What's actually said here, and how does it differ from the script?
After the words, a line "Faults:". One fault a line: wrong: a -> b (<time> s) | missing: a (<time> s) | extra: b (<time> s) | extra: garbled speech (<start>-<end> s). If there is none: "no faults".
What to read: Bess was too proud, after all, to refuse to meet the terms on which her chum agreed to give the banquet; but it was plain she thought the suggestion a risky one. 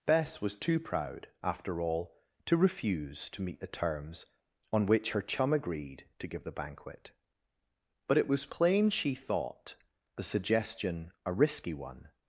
Bess was too proud, after all, to refuse to meet the terms on which her chum agreed to give the banquet; but it was plain she thought the suggestion a risky one.
Faults:
no faults